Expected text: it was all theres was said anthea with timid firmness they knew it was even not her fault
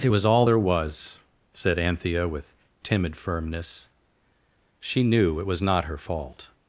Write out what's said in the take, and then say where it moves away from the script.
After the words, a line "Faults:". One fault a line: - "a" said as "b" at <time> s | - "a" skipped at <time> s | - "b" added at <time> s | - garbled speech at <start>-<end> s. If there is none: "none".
it was all there was said anthea with timid firmness she knew it was not her fault
Faults:
- "theres" said as "there" at 0.4 s
- "they" said as "she" at 4.8 s
- "even" skipped at 5.6 s